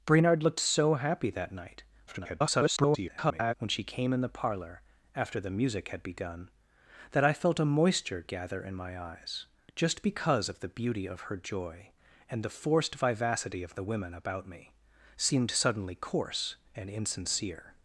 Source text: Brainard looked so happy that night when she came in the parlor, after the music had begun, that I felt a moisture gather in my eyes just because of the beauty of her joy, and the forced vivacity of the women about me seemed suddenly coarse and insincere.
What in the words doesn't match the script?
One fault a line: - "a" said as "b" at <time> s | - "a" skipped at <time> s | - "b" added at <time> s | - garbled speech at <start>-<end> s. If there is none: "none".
- garbled speech at 2.1-3.5 s